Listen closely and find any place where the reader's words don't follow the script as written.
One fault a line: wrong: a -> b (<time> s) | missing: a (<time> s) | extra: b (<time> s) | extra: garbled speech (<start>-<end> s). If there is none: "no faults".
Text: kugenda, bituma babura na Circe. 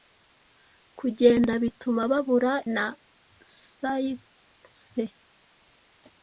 no faults